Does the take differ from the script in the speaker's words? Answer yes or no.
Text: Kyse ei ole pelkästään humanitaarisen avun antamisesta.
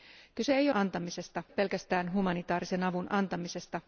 yes